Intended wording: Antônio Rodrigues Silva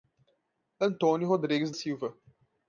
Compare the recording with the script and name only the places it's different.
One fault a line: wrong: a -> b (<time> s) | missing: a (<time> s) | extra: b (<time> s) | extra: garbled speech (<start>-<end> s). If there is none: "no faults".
no faults